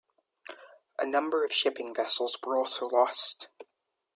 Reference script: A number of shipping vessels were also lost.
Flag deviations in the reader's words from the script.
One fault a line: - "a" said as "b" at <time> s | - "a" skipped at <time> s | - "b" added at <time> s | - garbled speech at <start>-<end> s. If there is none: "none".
none